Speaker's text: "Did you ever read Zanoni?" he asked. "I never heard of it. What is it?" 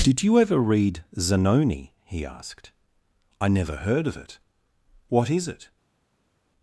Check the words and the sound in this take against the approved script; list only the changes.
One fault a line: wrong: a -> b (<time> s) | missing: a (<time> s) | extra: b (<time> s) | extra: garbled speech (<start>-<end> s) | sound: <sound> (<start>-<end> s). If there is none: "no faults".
no faults